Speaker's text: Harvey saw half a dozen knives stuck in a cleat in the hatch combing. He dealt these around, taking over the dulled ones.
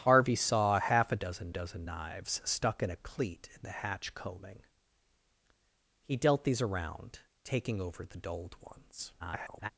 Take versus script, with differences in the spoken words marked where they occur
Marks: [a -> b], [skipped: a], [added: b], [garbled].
Harvey saw half a dozen [added: dozen] knives stuck in a cleat in the hatch combing. He dealt these around, taking over the dulled ones. [garbled]